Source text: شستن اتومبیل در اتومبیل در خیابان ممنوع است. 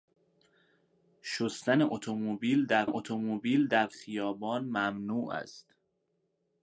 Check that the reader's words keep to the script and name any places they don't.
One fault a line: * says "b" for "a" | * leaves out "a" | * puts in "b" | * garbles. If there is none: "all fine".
all fine